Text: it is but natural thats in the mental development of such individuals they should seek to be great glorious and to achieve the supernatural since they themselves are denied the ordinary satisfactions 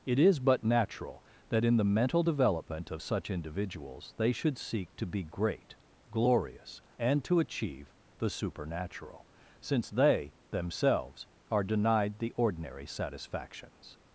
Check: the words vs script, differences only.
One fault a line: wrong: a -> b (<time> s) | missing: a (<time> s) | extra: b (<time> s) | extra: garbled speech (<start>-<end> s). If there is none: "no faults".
wrong: thats -> that (1.5 s)